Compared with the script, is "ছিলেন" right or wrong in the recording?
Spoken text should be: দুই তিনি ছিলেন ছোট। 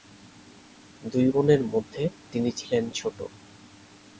right